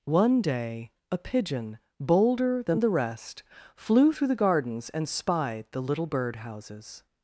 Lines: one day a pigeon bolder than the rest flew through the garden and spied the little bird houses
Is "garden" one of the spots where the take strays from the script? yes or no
yes